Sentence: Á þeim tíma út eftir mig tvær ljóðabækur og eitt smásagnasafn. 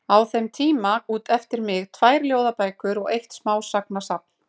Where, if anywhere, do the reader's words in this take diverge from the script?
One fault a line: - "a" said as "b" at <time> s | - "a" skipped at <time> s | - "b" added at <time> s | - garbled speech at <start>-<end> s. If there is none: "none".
none